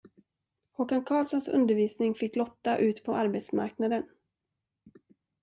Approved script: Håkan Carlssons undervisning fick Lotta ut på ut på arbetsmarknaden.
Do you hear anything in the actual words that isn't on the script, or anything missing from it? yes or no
yes